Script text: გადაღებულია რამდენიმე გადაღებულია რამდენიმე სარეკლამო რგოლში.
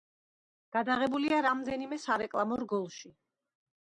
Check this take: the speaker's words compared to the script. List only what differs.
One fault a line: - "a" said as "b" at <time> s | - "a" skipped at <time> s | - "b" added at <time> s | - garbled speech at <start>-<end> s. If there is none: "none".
- "გადაღებულია რამდენიმე" skipped at 2.0 s